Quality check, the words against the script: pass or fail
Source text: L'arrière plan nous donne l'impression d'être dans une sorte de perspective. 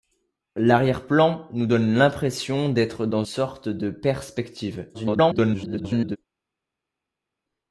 fail